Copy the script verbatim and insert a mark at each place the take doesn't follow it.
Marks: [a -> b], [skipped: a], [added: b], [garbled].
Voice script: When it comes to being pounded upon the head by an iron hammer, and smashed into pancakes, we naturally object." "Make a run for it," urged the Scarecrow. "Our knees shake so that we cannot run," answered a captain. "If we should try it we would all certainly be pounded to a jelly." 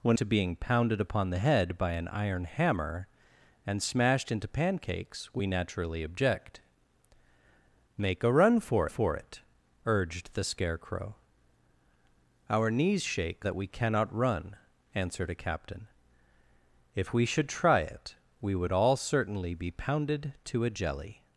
When [skipped: it comes] to being pounded upon the head by an iron hammer, and smashed into pancakes, we naturally object." "Make a run for [added: for] it," urged the Scarecrow. "Our knees shake [skipped: so] that we cannot run," answered a captain. "If we should try it we would all certainly be pounded to a jelly."